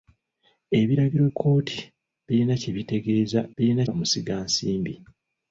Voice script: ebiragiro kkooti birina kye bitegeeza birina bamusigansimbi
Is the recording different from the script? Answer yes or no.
no